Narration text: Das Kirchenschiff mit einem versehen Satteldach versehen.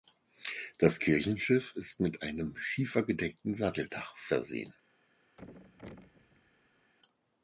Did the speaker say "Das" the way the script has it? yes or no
yes